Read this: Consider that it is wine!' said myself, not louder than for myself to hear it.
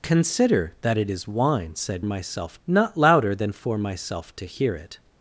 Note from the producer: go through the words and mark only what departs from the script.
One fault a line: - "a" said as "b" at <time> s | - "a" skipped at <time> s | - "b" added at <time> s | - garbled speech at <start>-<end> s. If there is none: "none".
none